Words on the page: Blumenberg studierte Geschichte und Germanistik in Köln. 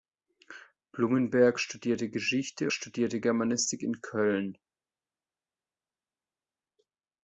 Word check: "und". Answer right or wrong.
wrong